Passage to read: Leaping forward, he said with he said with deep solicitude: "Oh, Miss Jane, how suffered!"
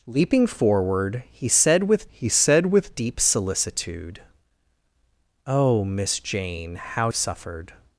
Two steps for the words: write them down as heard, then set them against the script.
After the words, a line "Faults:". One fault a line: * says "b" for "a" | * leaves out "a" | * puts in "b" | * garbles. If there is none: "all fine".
Leaping forward, he said with he said with deep solicitude: "Oh, Miss Jane, how suffered!"
Faults:
all fine